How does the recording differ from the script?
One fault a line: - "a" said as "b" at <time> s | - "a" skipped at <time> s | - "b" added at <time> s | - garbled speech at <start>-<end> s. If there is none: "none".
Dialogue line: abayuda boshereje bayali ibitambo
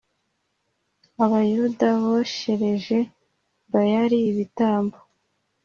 none